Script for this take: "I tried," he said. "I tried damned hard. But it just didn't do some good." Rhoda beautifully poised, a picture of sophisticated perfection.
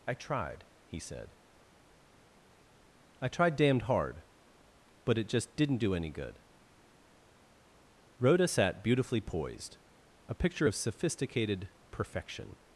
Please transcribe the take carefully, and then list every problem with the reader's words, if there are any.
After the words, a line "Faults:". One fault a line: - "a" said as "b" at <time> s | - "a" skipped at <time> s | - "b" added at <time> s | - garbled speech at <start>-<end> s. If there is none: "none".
"I tried," he said. "I tried damned hard. But it just didn't do any good." Rhoda sat beautifully poised, a picture of sophisticated perfection.
Faults:
- "some" said as "any" at 5.9 s
- "sat" added at 8.5 s